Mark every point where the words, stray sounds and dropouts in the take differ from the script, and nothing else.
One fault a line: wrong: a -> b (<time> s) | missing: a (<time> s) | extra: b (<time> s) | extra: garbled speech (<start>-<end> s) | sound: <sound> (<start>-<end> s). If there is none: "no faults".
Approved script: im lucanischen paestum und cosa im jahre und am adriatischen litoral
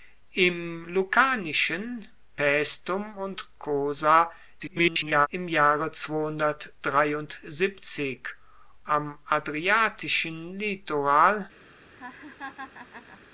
extra: garbled speech (4.6-5.3 s)
missing: und (5.9 s)
sound: laugh (11.9-13.2 s)